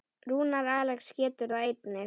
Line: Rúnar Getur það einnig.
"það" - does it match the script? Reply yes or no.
yes